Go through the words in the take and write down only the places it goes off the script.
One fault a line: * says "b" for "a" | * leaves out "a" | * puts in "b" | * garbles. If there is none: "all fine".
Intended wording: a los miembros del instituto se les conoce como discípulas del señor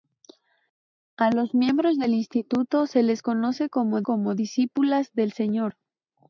* puts in "como"